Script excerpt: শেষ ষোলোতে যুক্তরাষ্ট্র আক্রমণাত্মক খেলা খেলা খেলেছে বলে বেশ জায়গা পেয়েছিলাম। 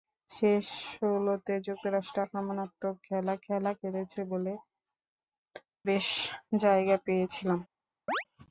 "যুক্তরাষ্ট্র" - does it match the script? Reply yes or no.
yes